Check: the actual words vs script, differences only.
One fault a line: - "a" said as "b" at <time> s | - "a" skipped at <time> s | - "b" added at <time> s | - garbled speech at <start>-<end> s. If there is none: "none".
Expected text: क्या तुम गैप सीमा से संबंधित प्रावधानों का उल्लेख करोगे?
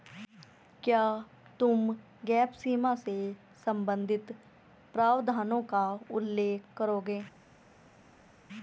none